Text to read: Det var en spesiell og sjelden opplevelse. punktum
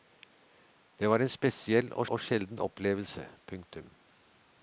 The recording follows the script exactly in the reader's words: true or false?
false